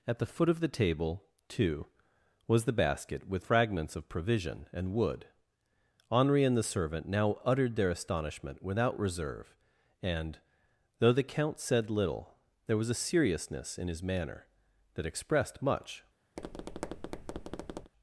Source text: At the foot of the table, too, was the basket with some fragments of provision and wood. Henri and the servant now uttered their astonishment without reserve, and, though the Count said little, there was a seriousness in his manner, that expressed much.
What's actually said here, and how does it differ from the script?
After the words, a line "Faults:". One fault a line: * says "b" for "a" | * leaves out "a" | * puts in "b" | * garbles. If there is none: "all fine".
At the foot of the table, too, was the basket with fragments of provision and wood. Henri and the servant now uttered their astonishment without reserve, and, though the Count said little, there was a seriousness in his manner, that expressed much.
Faults:
* leaves out "some"